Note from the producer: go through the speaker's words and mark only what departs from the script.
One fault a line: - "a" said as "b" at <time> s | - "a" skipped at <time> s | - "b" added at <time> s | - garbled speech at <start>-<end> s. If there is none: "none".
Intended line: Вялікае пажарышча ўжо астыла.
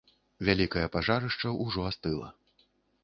none